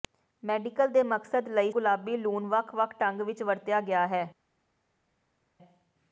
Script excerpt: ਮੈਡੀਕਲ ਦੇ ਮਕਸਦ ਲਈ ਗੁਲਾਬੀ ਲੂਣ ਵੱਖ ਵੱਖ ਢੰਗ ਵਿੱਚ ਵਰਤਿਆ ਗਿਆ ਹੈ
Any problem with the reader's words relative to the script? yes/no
no